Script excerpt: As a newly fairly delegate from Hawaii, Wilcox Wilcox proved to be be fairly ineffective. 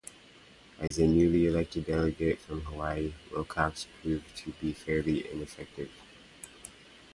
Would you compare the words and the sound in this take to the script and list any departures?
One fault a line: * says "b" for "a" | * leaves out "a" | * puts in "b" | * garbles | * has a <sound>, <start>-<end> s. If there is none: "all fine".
* has a dropout, 0.9-0.9 s
* says "elected" for "fairly"
* leaves out "Wilcox"
* leaves out "be"